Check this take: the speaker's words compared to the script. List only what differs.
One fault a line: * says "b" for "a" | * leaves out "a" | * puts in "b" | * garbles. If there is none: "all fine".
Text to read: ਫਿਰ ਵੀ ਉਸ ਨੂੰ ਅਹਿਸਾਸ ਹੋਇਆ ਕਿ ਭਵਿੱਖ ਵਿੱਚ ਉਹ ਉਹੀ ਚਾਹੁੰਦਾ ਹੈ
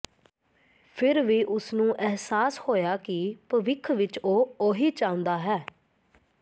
all fine